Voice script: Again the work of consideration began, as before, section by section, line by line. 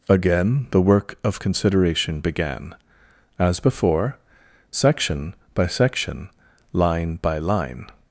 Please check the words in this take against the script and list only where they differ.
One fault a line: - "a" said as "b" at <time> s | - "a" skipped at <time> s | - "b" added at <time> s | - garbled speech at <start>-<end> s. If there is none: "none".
none